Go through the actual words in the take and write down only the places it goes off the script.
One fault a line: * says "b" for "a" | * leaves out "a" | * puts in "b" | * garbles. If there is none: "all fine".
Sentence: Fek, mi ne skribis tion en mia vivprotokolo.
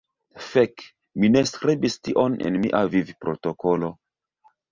all fine